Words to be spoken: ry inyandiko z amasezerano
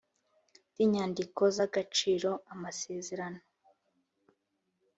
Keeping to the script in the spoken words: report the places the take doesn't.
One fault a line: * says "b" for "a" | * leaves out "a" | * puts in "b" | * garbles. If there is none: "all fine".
* puts in "agaciro"